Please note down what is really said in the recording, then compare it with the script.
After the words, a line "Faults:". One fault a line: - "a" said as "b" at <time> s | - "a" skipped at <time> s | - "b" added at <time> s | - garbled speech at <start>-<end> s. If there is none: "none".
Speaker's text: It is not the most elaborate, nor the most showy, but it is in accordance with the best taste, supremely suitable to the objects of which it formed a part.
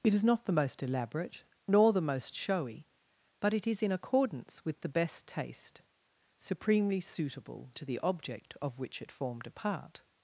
It is not the most elaborate, nor the most showy, but it is in accordance with the best taste, supremely suitable to the object of which it formed a part.
Faults:
- "objects" said as "object" at 8.0 s